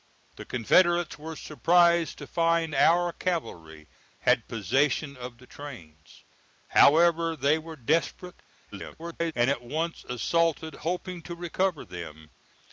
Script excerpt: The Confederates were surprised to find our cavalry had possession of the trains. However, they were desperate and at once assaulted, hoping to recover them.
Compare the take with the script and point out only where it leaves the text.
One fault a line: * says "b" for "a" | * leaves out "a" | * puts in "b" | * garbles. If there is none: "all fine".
* garbles